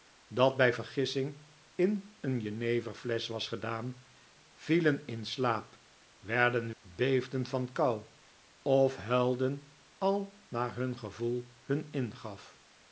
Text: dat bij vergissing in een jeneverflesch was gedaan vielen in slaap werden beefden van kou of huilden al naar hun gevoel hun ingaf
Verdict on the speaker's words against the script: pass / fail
pass